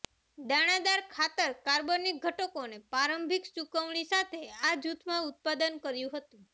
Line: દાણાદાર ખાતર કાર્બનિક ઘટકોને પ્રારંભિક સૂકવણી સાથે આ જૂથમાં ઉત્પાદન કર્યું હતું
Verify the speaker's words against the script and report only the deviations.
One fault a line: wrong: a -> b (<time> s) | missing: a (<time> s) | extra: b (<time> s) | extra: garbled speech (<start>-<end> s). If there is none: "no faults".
no faults